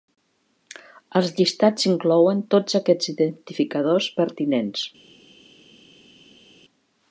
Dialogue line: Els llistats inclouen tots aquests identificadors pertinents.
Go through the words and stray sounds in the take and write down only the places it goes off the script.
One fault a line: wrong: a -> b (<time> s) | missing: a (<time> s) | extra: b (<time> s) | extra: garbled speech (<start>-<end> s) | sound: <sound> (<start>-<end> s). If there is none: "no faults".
no faults